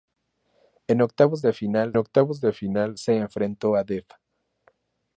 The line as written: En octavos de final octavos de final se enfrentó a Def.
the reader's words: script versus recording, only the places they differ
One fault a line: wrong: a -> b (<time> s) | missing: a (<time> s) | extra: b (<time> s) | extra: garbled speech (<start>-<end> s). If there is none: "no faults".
no faults